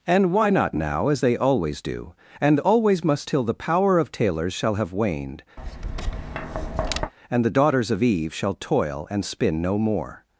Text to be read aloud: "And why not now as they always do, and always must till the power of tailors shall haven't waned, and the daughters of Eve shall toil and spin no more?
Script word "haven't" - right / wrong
wrong